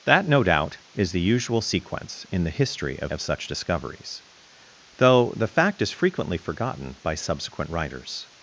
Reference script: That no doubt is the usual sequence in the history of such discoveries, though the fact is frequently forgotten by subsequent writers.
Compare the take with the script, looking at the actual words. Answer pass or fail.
fail